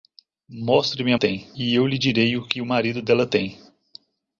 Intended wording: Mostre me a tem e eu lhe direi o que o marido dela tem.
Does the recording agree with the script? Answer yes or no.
yes